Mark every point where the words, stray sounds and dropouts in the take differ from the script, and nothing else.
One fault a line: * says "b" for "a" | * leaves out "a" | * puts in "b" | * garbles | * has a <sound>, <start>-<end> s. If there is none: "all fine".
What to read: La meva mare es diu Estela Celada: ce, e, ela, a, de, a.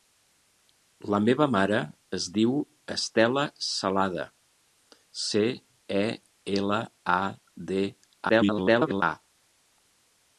* garbles